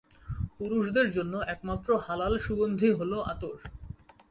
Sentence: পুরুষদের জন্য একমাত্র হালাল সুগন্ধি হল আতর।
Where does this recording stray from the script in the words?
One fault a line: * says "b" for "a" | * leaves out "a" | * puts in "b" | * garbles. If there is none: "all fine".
all fine